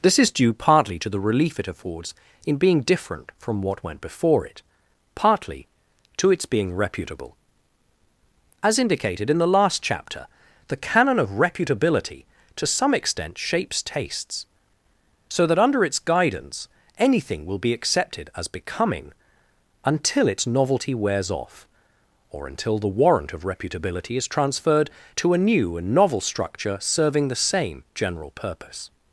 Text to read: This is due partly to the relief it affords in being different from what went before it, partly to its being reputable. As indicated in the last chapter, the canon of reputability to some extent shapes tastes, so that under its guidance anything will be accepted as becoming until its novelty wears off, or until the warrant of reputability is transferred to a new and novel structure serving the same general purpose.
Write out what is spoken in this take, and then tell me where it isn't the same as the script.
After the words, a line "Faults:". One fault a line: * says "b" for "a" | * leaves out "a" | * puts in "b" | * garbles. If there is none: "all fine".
This is due partly to the relief it affords in being different from what went before it, partly to its being reputable. As indicated in the last chapter, the canon of reputability to some extent shapes tastes, so that under its guidance anything will be accepted as becoming until its novelty wears off, or until the warrant of reputability is transferred to a new and novel structure serving the same general purpose.
Faults:
all fine